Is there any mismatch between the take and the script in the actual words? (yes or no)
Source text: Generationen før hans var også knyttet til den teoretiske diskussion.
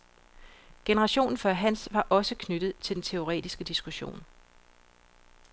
no